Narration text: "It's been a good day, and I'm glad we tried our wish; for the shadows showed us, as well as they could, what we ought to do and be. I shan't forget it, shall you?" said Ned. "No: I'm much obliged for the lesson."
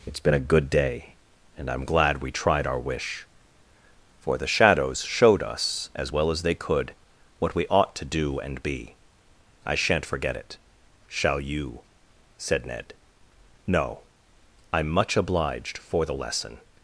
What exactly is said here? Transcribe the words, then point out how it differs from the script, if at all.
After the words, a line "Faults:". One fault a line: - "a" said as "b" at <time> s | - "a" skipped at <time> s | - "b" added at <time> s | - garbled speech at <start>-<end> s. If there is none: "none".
"It's been a good day, and I'm glad we tried our wish; for the shadows showed us, as well as they could, what we ought to do and be. I shan't forget it, shall you?" said Ned. "No: I'm much obliged for the lesson."
Faults:
none